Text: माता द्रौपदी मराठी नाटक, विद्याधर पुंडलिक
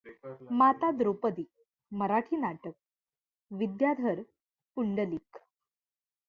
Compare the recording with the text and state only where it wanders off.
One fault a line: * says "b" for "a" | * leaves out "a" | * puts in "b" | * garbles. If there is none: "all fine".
all fine